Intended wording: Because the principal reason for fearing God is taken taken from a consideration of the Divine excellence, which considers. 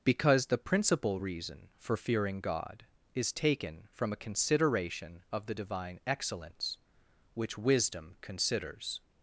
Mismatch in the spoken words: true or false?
true